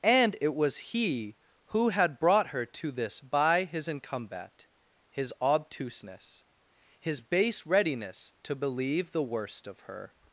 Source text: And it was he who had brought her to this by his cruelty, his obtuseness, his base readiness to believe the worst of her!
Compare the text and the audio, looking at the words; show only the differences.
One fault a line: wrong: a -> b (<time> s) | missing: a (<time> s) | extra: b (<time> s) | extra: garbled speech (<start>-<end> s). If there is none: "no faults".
wrong: cruelty -> incumbat (3.9 s)